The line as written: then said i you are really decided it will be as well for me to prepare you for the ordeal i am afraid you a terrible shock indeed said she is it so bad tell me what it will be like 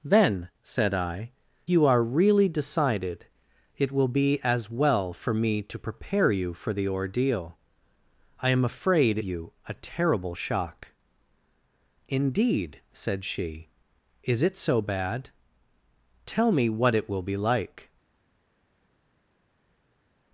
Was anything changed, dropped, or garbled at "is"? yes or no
no